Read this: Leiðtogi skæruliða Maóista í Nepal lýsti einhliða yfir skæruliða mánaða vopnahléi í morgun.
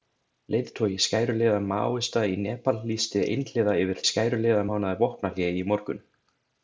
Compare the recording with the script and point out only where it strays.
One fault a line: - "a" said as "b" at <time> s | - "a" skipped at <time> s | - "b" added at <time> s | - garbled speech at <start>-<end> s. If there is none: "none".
none